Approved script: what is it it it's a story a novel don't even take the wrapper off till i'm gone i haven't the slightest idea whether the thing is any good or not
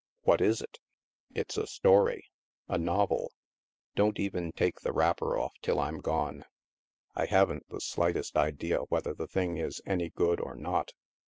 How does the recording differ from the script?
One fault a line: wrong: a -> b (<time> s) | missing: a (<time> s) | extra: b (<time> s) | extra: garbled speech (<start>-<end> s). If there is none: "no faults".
missing: it (0.8 s)